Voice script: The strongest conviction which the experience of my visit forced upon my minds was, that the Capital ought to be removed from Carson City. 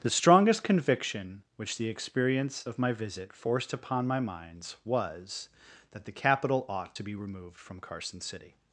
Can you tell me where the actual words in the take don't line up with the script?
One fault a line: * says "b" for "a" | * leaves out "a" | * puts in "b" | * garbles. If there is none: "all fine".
all fine